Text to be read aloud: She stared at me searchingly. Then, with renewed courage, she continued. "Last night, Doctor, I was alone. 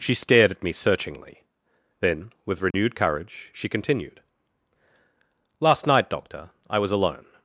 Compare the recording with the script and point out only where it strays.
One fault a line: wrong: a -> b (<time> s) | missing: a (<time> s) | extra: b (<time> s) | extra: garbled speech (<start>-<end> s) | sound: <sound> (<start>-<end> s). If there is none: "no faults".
sound: dropout (2.7-2.7 s)